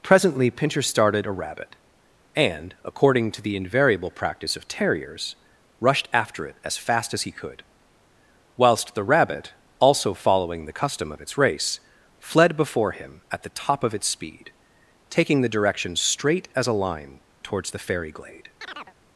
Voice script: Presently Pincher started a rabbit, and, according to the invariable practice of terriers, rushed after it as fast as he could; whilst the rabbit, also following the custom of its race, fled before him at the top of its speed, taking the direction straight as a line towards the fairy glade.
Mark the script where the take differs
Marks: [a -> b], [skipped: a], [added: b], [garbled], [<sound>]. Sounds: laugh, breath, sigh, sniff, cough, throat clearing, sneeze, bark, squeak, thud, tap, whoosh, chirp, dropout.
Presently Pincher started a rabbit, and, according to the invariable practice of terriers, rushed after it as fast as he could; whilst the rabbit, also following the custom of its race, fled before him at the top of its speed, taking the direction straight as a line towards the fairy glade. [chirp]